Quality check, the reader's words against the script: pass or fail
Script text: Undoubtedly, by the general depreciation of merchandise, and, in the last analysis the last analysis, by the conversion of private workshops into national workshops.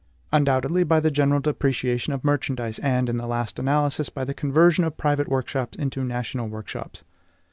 fail